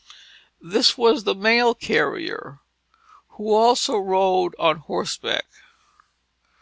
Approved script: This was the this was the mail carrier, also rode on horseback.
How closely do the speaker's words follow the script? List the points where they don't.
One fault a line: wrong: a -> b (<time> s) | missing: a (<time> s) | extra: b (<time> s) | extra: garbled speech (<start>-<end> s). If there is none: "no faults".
missing: this was the (1.4 s)
extra: who (3.4 s)